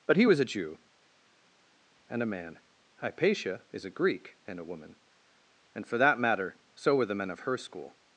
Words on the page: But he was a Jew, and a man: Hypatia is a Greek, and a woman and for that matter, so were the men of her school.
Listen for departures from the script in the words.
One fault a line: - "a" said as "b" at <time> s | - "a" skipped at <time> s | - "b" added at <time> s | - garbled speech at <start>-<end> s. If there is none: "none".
none